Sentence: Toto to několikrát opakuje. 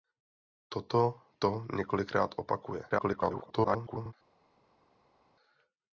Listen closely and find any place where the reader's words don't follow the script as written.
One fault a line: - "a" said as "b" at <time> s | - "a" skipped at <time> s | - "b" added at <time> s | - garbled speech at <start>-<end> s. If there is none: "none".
- garbled speech at 2.9-4.1 s